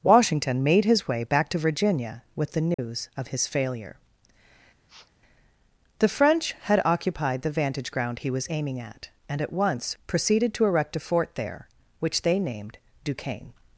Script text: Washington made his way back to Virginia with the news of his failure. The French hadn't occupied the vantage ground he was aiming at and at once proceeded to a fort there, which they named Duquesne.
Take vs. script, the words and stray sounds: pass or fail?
fail